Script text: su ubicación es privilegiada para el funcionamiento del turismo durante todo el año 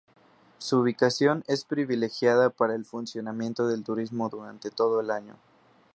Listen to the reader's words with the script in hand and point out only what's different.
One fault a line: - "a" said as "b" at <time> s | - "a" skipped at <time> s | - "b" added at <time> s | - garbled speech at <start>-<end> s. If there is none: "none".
none